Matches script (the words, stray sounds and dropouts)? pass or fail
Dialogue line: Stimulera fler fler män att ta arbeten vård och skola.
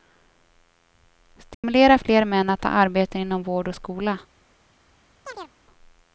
fail